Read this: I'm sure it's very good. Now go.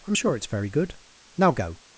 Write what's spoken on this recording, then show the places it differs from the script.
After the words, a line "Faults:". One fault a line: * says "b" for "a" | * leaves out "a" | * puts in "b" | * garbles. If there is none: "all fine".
I'm sure it's very good. Now go.
Faults:
all fine